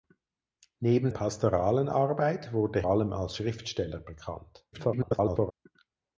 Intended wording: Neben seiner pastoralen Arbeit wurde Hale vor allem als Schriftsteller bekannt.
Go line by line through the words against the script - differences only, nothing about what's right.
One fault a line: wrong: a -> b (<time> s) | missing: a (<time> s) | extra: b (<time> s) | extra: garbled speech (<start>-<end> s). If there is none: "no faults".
missing: seiner (1.1 s)
missing: Hale vor (2.9 s)
extra: garbled speech (4.7-5.5 s)